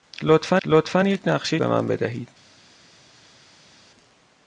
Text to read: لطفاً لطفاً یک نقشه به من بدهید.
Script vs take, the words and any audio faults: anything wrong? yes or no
no